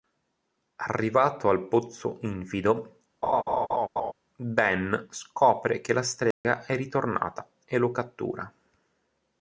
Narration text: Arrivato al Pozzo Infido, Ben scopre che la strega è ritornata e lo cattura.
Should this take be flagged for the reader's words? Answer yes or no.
no